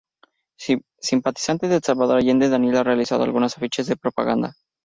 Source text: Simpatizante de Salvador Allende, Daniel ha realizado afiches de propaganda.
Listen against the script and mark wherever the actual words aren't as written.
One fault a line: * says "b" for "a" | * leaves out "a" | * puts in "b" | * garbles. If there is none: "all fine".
* puts in "algunos"